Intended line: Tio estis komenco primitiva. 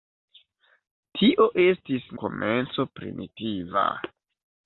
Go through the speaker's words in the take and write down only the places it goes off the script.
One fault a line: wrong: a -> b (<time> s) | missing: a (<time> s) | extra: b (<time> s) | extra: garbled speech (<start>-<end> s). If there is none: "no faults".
no faults